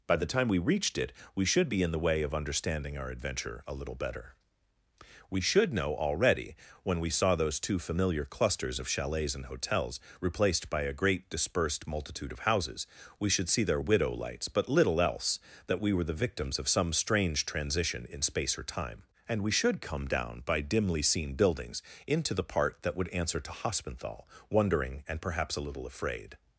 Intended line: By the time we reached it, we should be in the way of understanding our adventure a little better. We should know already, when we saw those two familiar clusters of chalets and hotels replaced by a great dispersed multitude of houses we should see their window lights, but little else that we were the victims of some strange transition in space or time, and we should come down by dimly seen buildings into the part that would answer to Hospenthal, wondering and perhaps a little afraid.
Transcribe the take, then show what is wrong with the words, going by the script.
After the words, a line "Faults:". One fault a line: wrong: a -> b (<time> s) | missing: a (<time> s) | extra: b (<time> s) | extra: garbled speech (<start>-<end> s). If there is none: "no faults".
By the time we reached it, we should be in the way of understanding our adventure a little better. We should know already, when we saw those two familiar clusters of chalets and hotels replaced by a great dispersed multitude of houses we should see their widow lights, but little else that we were the victims of some strange transition in space or time, and we should come down by dimly seen buildings into the part that would answer to Hospenthal, wondering and perhaps a little afraid.
Faults:
wrong: window -> widow (13.8 s)